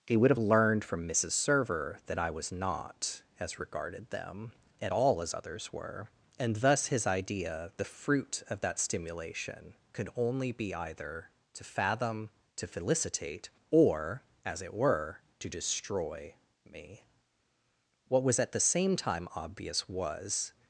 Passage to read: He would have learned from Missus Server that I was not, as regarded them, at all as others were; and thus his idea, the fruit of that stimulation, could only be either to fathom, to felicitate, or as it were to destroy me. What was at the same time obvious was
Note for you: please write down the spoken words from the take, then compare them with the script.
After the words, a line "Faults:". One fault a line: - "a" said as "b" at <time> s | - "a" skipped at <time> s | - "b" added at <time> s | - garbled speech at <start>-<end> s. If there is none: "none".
He would have learned from Missus Server that I was not, as regarded them, at all as others were; and thus his idea, the fruit of that stimulation, could only be either to fathom, to felicitate, or as it were to destroy me. What was at the same time obvious was
Faults:
none